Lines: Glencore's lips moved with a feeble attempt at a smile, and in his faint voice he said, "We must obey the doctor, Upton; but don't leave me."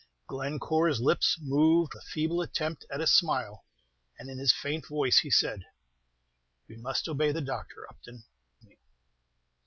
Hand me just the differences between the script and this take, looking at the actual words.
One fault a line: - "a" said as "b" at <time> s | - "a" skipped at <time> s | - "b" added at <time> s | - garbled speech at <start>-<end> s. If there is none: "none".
- "with" skipped at 1.9 s
- "but don't leave" skipped at 8.2 s